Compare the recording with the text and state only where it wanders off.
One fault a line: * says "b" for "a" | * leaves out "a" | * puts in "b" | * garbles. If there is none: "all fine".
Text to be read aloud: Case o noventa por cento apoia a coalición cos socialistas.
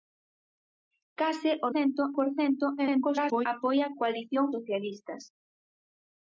* says "cento" for "noventa"
* garbles
* leaves out "cos"